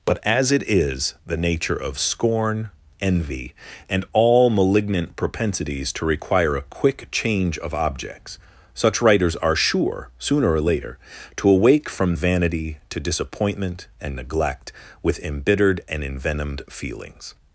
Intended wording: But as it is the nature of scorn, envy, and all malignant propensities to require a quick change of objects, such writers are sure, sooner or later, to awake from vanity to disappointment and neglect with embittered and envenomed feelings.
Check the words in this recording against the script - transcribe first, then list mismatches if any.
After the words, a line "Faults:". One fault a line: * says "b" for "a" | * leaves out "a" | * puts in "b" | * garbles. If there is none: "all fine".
But as it is the nature of scorn, envy, and all malignant propensities to require a quick change of objects, such writers are sure, sooner or later, to awake from vanity to disappointment and neglect with embittered and envenomed feelings.
Faults:
all fine